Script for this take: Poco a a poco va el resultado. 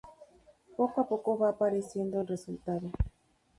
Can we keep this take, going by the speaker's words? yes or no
no